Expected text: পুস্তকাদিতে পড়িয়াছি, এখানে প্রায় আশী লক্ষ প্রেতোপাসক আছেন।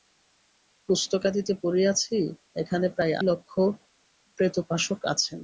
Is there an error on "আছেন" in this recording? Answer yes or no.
no